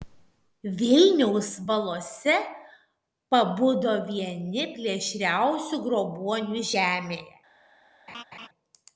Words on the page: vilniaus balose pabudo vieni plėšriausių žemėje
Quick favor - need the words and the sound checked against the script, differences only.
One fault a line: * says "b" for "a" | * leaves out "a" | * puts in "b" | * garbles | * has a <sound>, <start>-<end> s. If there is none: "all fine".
* puts in "grobuonių"
* has a laugh, 8.1-8.5 s